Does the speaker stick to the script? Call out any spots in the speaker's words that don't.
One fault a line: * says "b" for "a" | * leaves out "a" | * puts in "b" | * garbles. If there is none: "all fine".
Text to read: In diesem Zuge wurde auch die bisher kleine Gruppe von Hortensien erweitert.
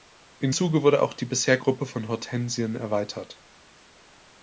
* leaves out "diesem"
* leaves out "kleine"